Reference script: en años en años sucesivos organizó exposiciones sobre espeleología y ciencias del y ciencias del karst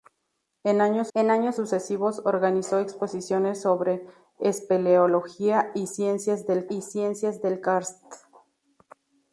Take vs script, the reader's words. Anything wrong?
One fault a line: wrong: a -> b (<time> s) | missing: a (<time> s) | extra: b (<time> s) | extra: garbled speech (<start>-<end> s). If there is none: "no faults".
no faults